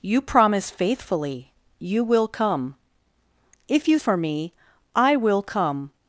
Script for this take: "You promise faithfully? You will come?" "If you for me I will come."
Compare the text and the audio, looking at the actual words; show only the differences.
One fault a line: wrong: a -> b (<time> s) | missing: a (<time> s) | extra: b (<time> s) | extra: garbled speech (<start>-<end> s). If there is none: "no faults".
no faults